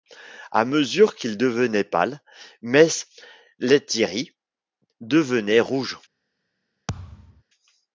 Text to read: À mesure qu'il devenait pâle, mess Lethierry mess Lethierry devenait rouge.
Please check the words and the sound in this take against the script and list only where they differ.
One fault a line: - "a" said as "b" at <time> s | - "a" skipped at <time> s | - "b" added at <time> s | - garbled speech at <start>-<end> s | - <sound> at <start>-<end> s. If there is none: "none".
- "mess Lethierry" skipped at 4.3 s
- thud at 6.9-7.4 s